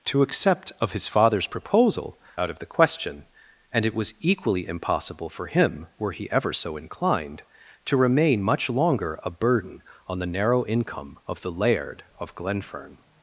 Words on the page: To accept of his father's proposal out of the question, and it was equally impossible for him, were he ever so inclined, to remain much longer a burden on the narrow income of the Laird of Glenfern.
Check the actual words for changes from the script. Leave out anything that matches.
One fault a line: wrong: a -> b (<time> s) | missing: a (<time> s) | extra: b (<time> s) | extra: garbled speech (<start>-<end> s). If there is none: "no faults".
no faults